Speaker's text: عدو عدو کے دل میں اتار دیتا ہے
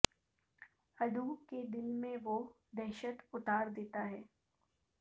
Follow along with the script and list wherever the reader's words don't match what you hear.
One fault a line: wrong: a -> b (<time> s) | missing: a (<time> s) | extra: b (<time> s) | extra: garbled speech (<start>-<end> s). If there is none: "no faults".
missing: عدو (1.2 s)
extra: وہ دہشت (2.2 s)